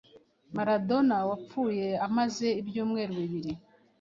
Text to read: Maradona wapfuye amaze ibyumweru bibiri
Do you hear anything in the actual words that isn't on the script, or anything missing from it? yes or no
no